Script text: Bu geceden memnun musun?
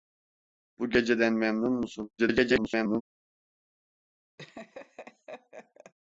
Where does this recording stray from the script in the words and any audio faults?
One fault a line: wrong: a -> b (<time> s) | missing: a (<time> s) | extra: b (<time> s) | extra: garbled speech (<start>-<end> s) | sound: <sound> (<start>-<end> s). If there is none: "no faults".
extra: garbled speech (2.2-3.0 s)
sound: laugh (4.4-5.9 s)